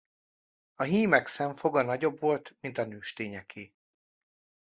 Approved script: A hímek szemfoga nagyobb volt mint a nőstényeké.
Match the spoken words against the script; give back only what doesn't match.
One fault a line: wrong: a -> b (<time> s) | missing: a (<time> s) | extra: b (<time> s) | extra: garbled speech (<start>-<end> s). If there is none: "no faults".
no faults